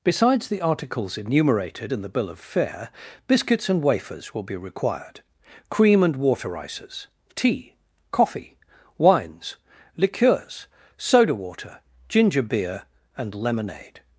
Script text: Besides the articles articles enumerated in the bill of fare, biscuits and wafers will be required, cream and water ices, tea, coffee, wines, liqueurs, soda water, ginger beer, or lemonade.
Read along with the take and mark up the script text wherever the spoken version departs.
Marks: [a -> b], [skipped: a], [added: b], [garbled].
Besides the articles [skipped: articles] enumerated in the bill of fare, biscuits and wafers will be required, cream and water ices, tea, coffee, wines, liqueurs, soda water, ginger beer, [or -> and] lemonade.